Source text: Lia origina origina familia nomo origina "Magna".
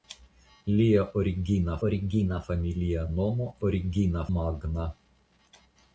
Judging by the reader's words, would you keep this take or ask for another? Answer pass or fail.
pass